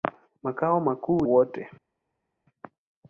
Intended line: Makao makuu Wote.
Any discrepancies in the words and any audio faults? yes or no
no